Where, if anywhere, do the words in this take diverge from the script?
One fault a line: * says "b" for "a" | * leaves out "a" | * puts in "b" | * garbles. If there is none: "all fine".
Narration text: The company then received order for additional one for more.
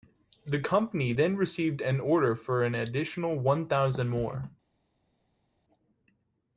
* puts in "an"
* puts in "an"
* says "thousand" for "for"